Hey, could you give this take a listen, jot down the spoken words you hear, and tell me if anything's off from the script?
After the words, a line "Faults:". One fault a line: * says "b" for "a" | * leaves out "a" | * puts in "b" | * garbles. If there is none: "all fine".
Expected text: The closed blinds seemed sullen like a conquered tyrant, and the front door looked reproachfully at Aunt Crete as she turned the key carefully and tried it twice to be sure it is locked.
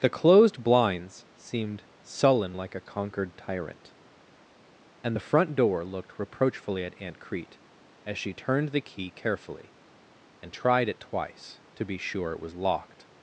The closed blinds seemed sullen like a conquered tyrant, and the front door looked reproachfully at Aunt Crete as she turned the key carefully and tried it twice to be sure it was locked.
Faults:
* says "was" for "is"